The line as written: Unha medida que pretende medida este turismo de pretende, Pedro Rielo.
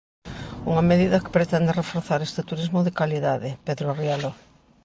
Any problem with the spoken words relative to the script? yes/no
yes